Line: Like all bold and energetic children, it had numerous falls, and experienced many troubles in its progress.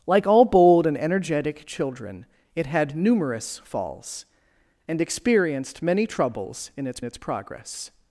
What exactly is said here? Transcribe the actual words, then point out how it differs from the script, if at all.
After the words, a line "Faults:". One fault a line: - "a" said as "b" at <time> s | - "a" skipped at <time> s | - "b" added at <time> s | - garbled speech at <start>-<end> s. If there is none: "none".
Like all bold and energetic children, it had numerous falls, and experienced many troubles in its its progress.
Faults:
- "its" added at 7.0 s